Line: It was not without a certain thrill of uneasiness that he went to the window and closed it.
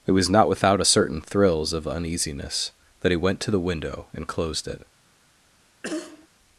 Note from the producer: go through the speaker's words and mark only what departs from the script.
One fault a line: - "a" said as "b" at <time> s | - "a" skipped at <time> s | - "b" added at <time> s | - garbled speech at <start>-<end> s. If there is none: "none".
- "thrill" said as "thrills" at 1.2 s